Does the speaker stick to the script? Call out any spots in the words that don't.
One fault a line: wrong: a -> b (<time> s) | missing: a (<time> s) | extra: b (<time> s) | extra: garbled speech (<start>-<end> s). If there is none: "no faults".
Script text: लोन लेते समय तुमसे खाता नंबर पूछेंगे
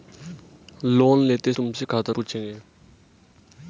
missing: समय (1.5 s)
missing: नंबर (2.1 s)